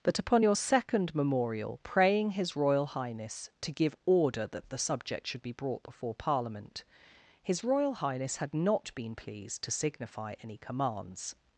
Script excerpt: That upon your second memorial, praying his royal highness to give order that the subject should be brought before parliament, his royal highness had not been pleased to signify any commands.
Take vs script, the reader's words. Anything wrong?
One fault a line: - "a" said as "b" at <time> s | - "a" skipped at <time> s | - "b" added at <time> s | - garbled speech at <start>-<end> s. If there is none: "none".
none